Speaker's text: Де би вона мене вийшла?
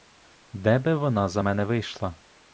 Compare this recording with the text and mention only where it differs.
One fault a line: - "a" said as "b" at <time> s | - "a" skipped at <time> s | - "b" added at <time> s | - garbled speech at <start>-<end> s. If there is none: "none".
- "за" added at 1.3 s